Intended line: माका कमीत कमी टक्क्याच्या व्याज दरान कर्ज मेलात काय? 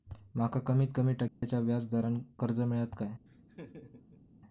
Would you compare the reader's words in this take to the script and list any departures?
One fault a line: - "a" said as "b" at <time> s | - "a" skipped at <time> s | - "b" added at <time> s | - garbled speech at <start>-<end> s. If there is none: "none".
none